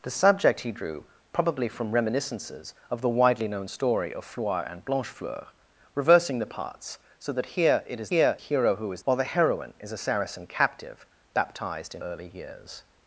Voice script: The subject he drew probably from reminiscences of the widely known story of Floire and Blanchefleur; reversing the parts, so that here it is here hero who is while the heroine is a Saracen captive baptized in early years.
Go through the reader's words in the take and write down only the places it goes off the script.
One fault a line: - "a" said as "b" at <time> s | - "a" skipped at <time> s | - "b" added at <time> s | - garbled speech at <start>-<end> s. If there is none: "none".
none